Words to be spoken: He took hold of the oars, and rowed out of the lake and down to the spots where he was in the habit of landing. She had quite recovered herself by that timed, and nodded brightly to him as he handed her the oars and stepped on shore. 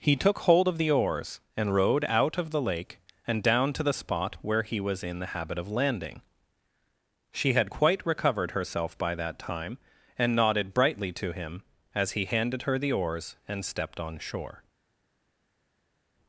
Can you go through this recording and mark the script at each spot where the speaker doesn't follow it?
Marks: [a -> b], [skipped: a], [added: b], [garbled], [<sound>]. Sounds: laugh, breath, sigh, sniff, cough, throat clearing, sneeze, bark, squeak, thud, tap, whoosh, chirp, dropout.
He took hold of the oars, and rowed out of the lake and down to the [spots -> spot] where he was in the habit of landing. She had quite recovered herself by that [timed, -> time] and nodded brightly to him as he handed her the oars and stepped on shore.